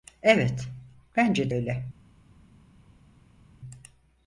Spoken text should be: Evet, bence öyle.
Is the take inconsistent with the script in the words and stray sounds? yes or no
no